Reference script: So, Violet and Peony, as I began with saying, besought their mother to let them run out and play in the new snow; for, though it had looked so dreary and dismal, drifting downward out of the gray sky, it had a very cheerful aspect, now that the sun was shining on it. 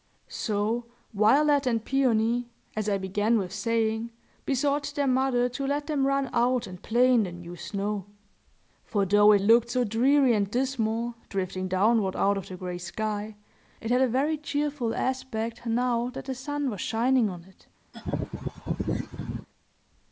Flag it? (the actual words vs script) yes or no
yes